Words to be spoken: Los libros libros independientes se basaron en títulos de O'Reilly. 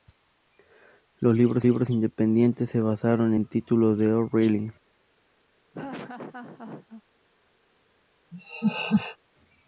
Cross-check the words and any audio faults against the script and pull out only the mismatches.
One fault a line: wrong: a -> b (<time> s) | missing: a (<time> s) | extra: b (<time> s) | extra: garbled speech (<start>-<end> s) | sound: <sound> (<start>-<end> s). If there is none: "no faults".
sound: laugh (5.7-7.0 s)
sound: laugh (8.3-9.2 s)